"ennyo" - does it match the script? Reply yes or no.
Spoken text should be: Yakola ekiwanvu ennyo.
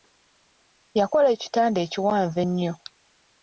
yes